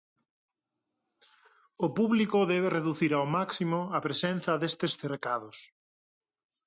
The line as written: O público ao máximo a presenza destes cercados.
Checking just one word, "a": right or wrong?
right